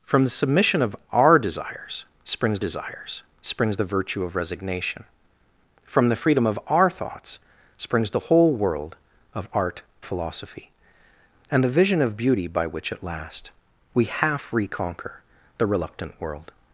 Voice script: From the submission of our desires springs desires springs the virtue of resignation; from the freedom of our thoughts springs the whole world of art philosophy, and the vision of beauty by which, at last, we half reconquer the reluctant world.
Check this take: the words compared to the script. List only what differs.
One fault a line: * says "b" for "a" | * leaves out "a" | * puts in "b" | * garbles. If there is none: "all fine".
all fine